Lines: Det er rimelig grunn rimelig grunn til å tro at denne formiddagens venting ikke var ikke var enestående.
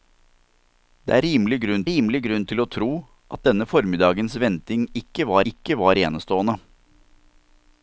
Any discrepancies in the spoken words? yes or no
no